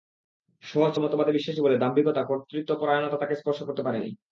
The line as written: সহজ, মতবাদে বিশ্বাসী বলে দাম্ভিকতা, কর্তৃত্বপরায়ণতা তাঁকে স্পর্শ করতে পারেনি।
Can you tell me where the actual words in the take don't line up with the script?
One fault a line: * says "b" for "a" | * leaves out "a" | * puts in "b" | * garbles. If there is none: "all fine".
all fine